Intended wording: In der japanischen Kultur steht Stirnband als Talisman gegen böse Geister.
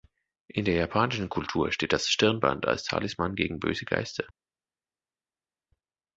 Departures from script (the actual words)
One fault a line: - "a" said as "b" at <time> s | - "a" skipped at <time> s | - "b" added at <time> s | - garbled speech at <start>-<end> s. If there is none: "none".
- "das" added at 1.9 s